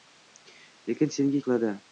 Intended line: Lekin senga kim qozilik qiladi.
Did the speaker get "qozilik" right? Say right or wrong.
wrong